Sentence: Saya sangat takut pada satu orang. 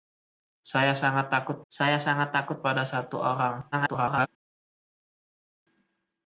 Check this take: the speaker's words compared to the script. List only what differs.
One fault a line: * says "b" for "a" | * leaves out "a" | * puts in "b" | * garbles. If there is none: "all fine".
* puts in "saya sangat takut"
* garbles